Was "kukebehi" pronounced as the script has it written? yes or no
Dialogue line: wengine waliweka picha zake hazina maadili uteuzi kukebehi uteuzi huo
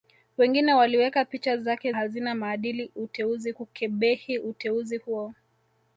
yes